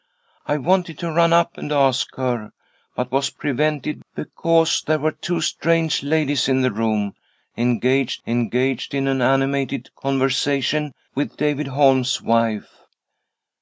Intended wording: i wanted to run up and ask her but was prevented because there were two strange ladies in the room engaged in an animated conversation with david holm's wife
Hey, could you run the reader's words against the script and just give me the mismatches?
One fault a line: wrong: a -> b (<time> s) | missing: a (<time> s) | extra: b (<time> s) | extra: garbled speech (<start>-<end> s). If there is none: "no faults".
extra: engaged (8.2 s)